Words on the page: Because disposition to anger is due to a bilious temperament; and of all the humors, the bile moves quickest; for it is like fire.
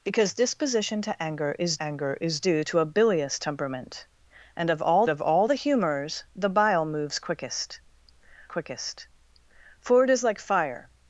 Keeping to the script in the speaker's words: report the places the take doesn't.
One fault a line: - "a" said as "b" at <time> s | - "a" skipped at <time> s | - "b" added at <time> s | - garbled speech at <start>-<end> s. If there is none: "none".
- "anger is" added at 1.8 s
- "of all" added at 5.1 s
- "quickest" added at 8.5 s